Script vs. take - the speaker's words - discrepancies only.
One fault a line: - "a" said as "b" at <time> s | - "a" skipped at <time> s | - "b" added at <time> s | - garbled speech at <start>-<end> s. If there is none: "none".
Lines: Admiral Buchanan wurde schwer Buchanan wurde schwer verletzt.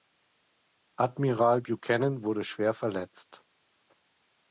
- "Buchanan wurde schwer" skipped at 2.7 s